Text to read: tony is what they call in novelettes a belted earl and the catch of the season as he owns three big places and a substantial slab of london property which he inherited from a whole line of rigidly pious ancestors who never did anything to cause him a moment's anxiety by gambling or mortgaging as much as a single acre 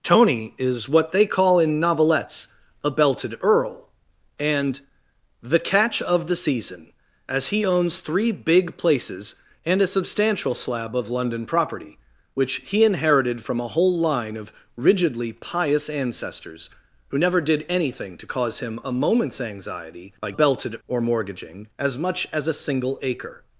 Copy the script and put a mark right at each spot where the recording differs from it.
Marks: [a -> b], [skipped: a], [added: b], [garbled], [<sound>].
tony is what they call in novelettes a belted earl and the catch of the season as he owns three big places and a substantial slab of london property which he inherited from a whole line of rigidly pious ancestors who never did anything to cause him a moment's anxiety by [gambling -> belted] or mortgaging as much as a single acre